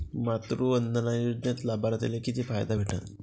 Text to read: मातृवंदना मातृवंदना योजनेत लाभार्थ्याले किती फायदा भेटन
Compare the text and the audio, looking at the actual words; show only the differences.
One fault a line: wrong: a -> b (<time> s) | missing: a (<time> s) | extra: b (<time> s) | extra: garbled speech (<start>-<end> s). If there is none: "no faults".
missing: मातृवंदना (1.1 s)